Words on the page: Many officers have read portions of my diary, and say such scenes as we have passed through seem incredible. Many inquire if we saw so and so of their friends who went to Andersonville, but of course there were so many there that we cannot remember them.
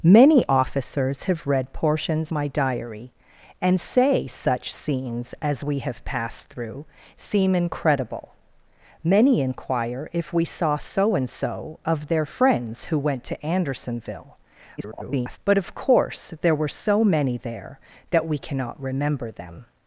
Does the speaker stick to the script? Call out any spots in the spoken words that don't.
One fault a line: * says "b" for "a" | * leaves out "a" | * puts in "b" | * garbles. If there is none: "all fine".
* leaves out "of"
* garbles